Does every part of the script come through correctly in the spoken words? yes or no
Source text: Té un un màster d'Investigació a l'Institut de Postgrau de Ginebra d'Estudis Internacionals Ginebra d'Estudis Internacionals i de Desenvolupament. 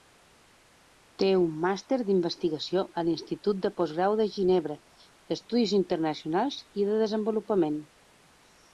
no